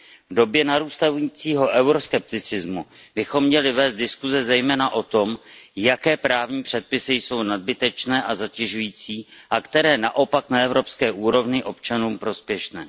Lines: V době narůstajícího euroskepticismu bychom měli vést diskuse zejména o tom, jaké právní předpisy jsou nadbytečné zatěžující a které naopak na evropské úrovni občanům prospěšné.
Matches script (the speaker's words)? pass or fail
fail